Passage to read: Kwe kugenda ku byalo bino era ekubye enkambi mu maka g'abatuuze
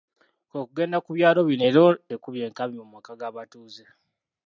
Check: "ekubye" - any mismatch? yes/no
no